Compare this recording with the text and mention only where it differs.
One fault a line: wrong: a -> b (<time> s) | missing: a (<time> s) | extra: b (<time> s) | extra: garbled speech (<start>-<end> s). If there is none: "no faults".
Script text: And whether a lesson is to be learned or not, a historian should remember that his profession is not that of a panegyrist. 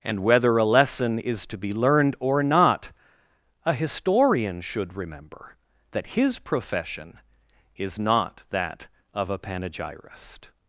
no faults